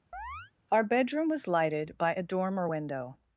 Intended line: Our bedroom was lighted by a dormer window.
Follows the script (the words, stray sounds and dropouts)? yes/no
no